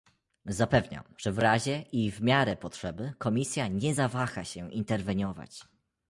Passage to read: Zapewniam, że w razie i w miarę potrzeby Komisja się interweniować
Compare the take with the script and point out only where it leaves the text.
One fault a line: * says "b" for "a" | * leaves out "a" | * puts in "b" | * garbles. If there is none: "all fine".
* puts in "nie zawaha"